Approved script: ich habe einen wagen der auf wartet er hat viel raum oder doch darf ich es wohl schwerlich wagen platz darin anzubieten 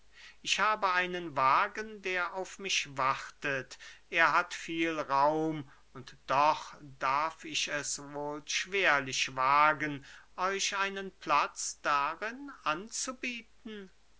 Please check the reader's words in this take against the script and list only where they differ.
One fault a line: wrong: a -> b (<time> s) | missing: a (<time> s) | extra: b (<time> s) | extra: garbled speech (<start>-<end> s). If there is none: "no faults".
extra: mich (2.6 s)
wrong: oder -> und (5.9 s)
extra: euch einen (10.4 s)